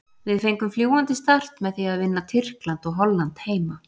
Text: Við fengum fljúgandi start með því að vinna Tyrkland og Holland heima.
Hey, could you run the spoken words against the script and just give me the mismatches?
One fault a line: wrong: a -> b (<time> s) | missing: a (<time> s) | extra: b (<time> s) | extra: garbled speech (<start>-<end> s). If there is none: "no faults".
no faults